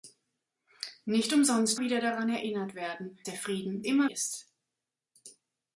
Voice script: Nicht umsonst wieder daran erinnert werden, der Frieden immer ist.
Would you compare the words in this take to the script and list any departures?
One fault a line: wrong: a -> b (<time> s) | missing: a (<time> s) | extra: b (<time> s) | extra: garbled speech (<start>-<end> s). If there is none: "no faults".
no faults